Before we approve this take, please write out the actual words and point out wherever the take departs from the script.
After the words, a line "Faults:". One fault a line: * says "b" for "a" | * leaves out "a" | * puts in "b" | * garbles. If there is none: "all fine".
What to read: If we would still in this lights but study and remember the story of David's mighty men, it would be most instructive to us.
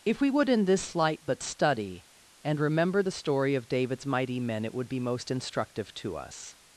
If we would in this light but study and remember the story of David's mighty men, it would be most instructive to us.
Faults:
* leaves out "still"
* says "light" for "lights"